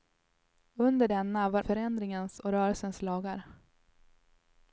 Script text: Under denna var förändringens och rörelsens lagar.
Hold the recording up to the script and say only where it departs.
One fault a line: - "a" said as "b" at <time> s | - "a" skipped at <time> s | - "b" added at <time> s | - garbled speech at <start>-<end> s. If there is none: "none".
none